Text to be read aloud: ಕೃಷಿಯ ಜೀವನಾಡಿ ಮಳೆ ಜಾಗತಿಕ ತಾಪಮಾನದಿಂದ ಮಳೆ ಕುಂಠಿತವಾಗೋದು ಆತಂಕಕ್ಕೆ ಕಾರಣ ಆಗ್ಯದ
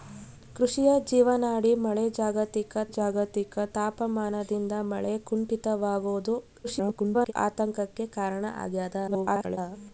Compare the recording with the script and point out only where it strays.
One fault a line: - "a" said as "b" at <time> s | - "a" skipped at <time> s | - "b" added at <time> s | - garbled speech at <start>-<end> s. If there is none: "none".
- "ಜಾಗತಿಕ" added at 2.9 s
- garbled speech at 6.6-7.3 s
- garbled speech at 9.1-9.6 s